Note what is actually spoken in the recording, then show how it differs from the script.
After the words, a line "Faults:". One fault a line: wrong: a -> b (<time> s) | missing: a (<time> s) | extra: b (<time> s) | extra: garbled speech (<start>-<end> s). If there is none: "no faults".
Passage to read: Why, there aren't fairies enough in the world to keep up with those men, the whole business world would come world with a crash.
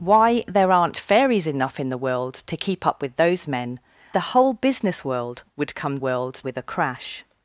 Why, there aren't fairies enough in the world to keep up with those men, the whole business world would come world with a crash.
Faults:
no faults